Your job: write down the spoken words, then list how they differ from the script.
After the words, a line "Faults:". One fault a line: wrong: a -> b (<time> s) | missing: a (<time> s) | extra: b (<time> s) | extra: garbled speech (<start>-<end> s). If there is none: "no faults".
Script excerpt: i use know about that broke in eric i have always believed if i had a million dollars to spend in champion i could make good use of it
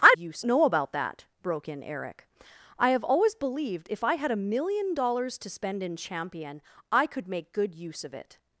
i use know about that broke in eric i have always believed if i had a million dollars to spend in champion i could make good use of it
Faults:
no faults